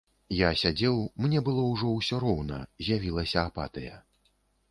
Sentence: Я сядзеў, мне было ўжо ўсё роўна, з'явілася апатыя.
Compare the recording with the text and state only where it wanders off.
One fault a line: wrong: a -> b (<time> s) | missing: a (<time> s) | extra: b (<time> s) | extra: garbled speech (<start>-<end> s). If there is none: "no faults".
no faults